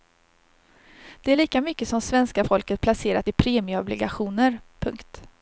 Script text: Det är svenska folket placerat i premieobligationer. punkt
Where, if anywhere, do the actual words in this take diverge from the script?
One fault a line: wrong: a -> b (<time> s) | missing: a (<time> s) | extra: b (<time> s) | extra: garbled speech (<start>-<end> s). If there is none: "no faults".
extra: lika mycket som (1.3 s)